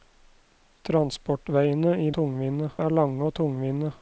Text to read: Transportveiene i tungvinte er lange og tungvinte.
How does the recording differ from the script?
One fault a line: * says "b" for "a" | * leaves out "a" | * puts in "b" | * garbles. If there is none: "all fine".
all fine